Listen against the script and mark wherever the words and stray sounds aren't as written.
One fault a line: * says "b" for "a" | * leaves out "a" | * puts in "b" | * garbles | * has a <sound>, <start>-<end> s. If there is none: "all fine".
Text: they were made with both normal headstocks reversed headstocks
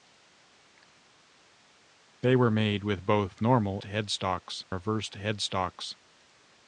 all fine